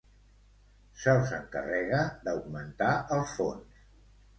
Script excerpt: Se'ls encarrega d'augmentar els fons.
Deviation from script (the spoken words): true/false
false